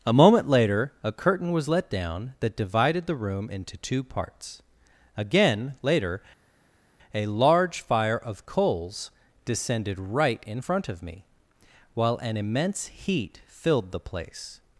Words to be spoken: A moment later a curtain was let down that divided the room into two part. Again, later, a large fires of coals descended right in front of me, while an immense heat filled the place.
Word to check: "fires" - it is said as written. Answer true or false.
false